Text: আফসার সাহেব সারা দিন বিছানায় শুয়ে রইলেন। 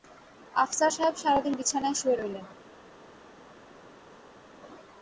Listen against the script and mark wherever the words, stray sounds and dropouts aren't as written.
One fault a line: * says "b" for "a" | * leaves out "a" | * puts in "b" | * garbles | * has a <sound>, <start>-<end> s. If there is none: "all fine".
all fine